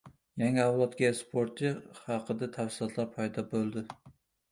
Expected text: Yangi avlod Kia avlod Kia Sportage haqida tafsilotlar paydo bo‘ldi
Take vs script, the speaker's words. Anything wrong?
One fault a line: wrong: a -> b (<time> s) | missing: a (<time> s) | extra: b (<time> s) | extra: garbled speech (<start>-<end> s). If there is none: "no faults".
missing: avlod Kia (1.1 s)